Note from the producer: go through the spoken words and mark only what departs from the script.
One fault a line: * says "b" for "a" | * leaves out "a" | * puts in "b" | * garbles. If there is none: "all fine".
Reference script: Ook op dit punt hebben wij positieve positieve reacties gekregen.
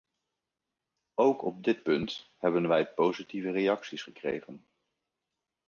* leaves out "positieve"